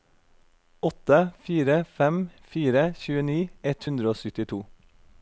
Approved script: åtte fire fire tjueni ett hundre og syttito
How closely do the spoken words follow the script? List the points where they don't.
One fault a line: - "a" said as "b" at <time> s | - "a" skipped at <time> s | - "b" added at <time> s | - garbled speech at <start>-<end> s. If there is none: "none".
- "fem" added at 2.0 s